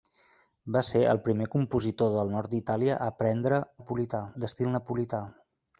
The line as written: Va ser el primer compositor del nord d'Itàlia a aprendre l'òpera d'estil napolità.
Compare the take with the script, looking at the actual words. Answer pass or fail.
fail